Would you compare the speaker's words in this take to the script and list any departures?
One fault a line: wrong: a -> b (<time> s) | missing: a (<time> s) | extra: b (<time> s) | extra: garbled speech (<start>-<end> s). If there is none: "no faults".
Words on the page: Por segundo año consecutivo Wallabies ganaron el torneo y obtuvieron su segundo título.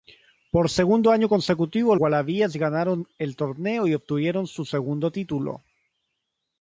no faults